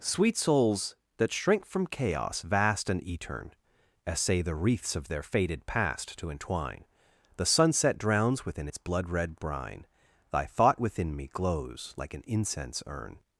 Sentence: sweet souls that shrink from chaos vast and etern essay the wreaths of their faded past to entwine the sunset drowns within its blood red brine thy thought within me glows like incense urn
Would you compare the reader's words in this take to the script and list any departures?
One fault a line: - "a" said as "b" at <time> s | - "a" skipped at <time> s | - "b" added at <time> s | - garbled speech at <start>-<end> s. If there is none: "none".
- "an" added at 12.1 s